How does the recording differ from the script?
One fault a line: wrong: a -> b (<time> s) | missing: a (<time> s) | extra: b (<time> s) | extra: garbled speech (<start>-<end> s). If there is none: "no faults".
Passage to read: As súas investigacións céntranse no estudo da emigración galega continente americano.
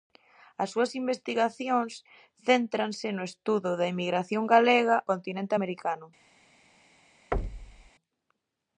no faults